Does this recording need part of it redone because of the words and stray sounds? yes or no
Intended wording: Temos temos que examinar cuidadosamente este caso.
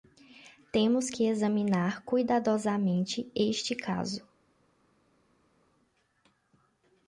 yes